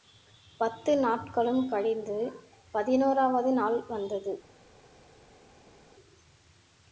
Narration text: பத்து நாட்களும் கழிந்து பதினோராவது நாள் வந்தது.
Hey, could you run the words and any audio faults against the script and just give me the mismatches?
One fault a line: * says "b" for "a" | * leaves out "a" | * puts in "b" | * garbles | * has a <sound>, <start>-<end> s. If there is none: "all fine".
all fine